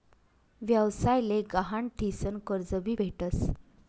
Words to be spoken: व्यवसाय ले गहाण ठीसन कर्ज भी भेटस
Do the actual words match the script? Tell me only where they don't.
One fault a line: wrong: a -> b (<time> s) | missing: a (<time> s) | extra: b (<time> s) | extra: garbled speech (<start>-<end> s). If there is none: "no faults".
no faults